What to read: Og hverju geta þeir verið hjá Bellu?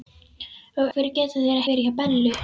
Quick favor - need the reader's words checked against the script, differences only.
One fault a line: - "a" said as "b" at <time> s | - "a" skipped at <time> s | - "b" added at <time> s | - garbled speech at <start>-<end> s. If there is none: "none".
none